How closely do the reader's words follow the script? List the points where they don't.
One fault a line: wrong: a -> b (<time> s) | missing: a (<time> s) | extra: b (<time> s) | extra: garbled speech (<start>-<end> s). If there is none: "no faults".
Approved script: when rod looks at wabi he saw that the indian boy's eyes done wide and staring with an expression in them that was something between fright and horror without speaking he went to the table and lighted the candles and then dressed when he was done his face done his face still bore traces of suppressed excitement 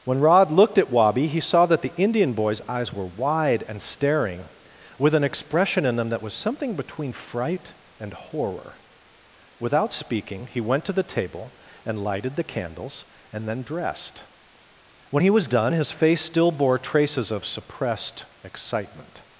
wrong: looks -> looked (0.5 s)
wrong: done -> were (2.9 s)
missing: done his face (16.2 s)